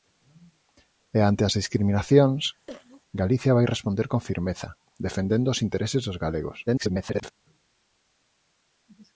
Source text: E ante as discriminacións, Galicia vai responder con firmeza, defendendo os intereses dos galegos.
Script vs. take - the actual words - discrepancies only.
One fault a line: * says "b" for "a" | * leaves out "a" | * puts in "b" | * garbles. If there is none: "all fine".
* garbles